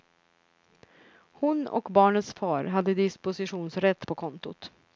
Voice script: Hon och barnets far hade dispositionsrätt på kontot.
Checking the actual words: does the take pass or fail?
pass